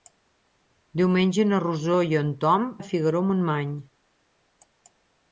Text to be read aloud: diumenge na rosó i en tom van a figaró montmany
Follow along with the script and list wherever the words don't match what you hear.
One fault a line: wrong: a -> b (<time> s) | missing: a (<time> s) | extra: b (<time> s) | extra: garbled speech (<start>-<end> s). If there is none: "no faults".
missing: van (2.6 s)